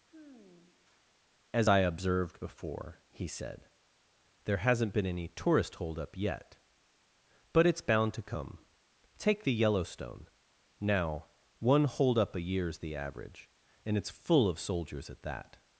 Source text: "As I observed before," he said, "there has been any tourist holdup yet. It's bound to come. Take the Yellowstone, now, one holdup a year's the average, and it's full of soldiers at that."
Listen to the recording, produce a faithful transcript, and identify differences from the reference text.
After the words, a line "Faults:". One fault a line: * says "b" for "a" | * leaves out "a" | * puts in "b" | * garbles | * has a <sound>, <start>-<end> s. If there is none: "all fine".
"As I observed before," he said, "there hasn't been any tourist holdup yet. But it's bound to come. Take the Yellowstone, now, one holdup a year's the average, and it's full of soldiers at that."
Faults:
* has a sigh, 0.1-1.2 s
* says "hasn't" for "has"
* puts in "But"